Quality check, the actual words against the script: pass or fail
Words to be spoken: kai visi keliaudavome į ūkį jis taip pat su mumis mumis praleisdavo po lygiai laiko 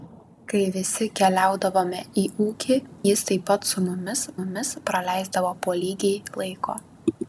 pass